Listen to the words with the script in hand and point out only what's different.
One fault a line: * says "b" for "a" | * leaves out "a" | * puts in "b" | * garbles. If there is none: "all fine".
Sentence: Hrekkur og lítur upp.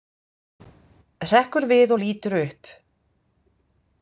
* puts in "við"